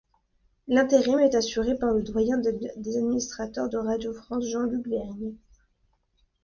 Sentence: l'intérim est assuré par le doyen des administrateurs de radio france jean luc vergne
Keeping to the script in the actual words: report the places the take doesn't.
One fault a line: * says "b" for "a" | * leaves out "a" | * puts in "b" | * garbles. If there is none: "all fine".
all fine